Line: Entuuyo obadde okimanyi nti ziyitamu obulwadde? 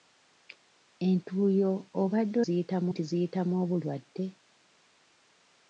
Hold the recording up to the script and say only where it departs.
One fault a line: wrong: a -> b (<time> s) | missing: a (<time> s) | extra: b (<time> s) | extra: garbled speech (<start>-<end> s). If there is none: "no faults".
wrong: okimanyi -> ziyitamu (2.4 s)